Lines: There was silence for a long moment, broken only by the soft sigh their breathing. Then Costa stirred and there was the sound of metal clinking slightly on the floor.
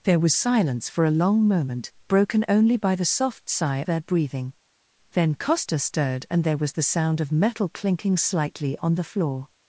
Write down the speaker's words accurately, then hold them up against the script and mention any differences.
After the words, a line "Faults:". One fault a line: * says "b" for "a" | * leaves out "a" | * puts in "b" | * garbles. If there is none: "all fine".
There was silence for a long moment, broken only by the soft sigh their breathing. Then Costa stirred and there was the sound of metal clinking slightly on the floor.
Faults:
all fine